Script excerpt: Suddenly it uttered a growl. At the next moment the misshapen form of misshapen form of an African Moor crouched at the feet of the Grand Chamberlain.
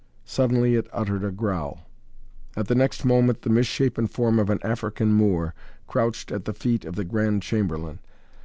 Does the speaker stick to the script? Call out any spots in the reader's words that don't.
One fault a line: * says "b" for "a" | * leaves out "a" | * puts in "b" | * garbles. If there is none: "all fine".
* leaves out "misshapen form of"